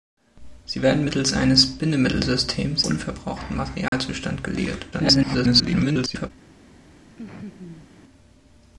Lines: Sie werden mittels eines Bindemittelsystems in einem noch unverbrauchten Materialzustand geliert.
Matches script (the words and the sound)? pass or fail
fail